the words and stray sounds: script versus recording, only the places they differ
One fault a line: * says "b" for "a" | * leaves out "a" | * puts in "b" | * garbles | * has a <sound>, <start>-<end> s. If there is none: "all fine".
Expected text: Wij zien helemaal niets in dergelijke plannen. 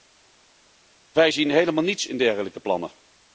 all fine